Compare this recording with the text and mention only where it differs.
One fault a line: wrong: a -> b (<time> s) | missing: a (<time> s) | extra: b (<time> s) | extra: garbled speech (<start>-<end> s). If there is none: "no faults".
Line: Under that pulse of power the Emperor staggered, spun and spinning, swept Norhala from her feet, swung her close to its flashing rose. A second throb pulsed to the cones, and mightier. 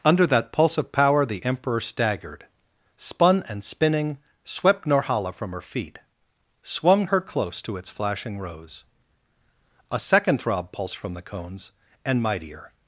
wrong: to -> from (11.0 s)